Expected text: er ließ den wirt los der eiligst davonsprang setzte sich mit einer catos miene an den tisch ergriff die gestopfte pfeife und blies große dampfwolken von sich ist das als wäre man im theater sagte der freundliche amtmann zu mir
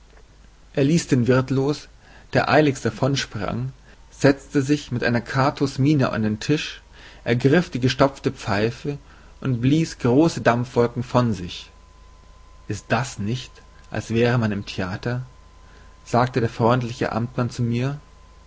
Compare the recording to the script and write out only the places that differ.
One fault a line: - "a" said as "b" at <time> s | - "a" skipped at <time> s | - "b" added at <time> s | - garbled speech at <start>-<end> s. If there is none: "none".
- "nicht" added at 13.2 s